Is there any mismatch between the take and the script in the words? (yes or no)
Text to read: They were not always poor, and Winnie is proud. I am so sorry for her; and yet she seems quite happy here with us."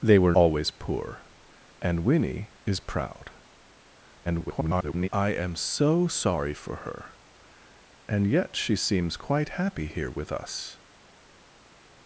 yes